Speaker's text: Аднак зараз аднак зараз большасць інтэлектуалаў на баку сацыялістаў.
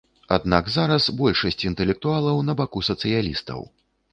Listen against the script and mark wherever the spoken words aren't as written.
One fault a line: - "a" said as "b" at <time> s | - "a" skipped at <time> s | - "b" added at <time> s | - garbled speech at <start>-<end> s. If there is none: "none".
- "аднак зараз" skipped at 1.1 s